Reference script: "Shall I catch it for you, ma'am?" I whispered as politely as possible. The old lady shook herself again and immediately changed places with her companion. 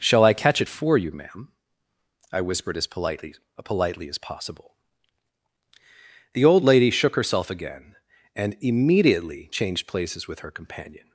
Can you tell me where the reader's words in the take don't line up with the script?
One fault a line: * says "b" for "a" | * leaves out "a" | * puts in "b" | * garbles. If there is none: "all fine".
* puts in "politely"